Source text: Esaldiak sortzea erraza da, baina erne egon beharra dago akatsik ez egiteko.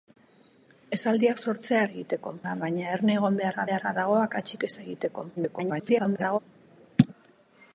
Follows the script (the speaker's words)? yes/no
no